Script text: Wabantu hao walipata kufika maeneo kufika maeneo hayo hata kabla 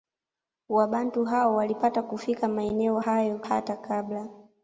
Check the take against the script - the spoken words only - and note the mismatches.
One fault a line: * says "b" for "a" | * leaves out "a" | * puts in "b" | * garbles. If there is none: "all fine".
* leaves out "kufika maeneo"